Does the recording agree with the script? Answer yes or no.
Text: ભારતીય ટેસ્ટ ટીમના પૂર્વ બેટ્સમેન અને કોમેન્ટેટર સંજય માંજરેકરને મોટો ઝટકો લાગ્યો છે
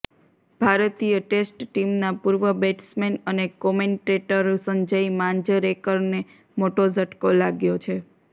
yes